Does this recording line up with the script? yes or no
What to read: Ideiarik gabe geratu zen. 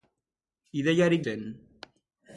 no